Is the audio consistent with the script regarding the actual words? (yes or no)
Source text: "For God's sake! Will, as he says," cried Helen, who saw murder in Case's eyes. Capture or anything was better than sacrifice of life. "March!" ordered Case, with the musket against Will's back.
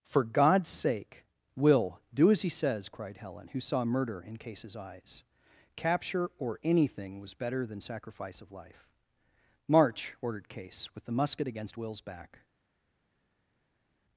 no